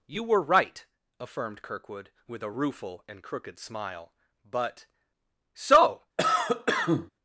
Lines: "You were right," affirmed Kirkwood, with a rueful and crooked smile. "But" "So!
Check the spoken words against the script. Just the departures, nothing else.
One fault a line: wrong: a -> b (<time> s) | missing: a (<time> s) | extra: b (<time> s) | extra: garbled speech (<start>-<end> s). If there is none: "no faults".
no faults